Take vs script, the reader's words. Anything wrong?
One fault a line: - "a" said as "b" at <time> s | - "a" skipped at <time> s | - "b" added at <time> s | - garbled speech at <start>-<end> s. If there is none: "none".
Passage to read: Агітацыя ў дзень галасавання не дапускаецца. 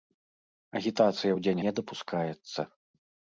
- "галасавання" skipped at 1.6 s